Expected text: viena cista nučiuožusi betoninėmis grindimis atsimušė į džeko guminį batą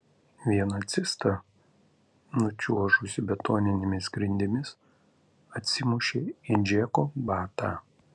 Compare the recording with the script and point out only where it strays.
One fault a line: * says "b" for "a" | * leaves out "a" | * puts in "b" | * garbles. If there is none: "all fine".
* leaves out "guminį"